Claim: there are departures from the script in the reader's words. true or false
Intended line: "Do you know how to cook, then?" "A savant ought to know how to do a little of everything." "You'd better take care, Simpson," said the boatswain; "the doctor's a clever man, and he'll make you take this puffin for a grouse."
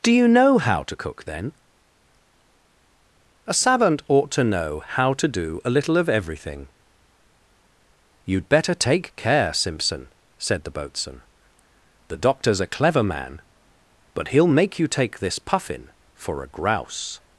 true